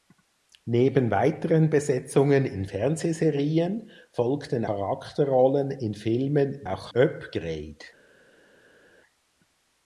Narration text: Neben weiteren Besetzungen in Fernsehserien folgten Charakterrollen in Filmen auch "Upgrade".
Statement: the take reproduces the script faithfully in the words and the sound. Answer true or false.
true